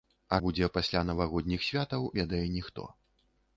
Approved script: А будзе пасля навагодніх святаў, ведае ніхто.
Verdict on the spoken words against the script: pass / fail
pass